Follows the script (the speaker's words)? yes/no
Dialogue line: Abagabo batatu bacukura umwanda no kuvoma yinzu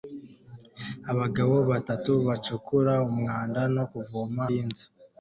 yes